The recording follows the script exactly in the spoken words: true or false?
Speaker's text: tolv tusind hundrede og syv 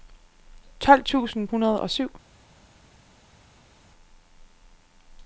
true